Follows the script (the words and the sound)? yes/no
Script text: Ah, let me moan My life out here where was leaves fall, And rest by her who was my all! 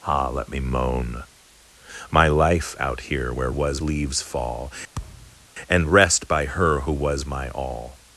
no